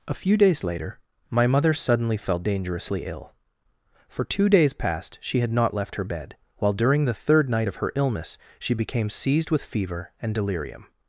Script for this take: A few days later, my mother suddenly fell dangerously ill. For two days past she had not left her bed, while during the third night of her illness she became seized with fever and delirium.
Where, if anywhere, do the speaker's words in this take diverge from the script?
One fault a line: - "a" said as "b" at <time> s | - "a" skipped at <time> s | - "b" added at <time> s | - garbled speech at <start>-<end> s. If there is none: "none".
none